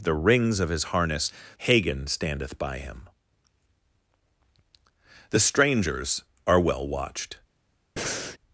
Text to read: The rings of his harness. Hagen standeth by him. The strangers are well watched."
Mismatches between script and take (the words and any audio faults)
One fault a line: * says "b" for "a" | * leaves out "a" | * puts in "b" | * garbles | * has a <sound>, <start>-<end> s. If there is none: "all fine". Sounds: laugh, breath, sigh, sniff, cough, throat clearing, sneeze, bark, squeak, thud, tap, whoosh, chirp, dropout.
* has a breath, 8.0-8.4 s